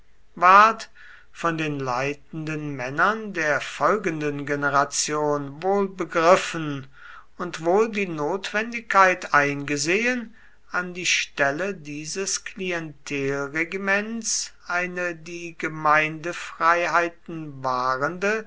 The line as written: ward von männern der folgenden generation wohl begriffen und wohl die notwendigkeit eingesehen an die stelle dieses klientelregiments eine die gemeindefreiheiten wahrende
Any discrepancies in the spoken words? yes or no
yes